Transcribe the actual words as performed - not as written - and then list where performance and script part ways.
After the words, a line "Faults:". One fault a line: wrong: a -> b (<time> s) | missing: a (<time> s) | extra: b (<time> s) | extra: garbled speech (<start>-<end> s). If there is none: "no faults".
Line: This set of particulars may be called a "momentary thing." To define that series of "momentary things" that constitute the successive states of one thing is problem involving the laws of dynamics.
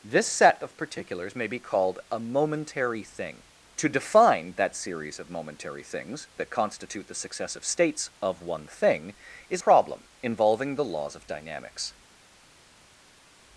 This set of particulars may be called a "momentary thing." To define that series of "momentary things" that constitute the successive states of one thing is problem involving the laws of dynamics.
Faults:
no faults